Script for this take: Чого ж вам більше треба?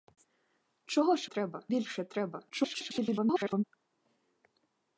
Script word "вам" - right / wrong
wrong